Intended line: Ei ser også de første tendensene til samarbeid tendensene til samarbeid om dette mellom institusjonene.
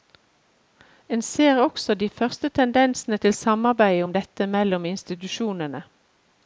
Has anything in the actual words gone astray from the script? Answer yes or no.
yes